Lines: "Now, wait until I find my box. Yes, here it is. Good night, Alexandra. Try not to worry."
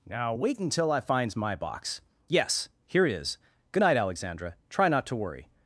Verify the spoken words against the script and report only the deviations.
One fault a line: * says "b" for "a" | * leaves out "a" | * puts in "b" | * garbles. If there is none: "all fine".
* says "finds" for "find"